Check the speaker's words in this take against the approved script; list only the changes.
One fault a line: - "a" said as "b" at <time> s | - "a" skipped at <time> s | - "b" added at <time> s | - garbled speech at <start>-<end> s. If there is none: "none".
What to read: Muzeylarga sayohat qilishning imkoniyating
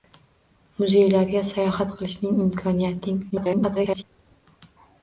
- garbled speech at 3.3-4.0 s